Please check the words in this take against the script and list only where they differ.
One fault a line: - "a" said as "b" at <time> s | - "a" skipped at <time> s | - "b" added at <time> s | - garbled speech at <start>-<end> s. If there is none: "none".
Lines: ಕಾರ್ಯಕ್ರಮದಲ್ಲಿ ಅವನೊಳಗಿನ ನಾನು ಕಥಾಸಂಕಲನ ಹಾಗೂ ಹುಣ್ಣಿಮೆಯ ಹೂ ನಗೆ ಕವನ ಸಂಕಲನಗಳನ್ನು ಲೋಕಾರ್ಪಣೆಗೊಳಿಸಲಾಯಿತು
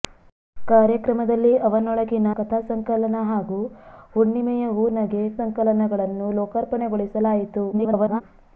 - "ನಾನು" skipped at 2.3 s
- "ಕವನ" skipped at 5.2 s
- garbled speech at 7.7-8.2 s